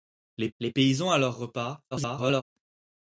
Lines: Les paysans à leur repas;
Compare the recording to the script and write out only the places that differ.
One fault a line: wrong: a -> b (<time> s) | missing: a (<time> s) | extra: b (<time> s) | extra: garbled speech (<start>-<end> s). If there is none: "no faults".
extra: les (0.6 s)
extra: garbled speech (1.9-2.4 s)